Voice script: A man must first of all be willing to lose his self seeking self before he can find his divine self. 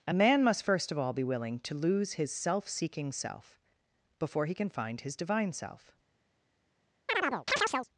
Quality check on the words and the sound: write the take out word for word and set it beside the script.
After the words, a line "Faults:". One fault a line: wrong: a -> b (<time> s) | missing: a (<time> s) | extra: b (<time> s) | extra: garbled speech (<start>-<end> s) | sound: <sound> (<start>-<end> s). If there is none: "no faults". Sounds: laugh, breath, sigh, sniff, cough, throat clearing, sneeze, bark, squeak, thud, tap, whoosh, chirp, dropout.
A man must first of all be willing to lose his self seeking self before he can find his divine self.
Faults:
sound: chirp (7.1-7.9 s)